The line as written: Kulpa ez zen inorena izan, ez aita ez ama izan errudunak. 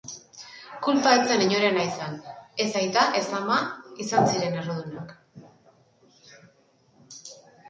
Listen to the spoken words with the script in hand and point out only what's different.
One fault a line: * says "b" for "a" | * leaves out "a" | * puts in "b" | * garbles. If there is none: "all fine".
* puts in "ziren"